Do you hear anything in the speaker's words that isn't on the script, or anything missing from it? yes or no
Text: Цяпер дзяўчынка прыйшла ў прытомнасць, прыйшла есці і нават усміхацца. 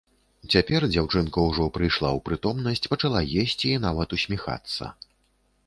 yes